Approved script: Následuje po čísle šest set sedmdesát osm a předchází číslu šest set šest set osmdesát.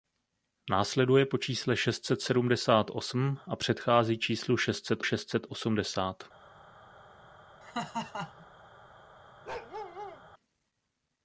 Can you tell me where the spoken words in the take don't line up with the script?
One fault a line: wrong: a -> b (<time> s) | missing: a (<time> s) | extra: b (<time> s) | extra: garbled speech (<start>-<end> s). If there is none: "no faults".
no faults